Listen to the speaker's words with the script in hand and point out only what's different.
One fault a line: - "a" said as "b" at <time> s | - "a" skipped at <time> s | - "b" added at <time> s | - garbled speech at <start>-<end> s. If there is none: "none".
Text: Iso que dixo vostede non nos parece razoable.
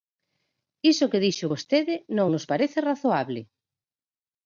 none